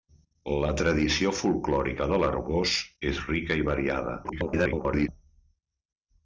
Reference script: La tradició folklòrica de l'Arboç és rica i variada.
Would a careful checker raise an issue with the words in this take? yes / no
yes